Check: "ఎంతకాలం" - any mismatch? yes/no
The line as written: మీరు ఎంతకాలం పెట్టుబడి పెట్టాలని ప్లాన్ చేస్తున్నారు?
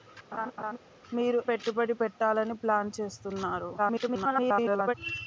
yes